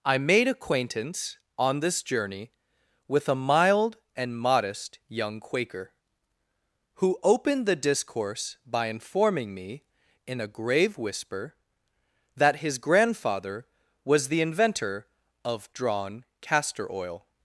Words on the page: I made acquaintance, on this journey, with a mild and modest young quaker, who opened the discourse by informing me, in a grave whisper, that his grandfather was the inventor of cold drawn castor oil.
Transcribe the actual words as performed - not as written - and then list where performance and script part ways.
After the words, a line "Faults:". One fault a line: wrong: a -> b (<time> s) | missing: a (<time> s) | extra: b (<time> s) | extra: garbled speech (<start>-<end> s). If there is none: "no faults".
I made acquaintance, on this journey, with a mild and modest young quaker, who opened the discourse by informing me, in a grave whisper, that his grandfather was the inventor of drawn castor oil.
Faults:
missing: cold (15.7 s)